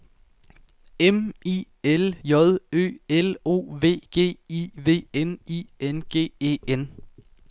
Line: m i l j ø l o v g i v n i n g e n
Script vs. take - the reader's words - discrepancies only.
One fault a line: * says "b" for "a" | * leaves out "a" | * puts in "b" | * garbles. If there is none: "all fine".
all fine